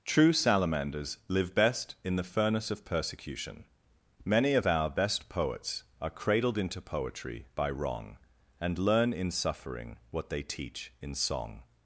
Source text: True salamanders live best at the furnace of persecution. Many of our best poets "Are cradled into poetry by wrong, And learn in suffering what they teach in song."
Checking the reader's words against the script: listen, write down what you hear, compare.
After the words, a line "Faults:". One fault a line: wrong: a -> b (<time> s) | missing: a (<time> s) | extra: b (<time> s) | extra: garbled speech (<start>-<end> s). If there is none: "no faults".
True salamanders live best in the furnace of persecution. Many of our best poets "Are cradled into poetry by wrong, And learn in suffering what they teach in song."
Faults:
wrong: at -> in (2.0 s)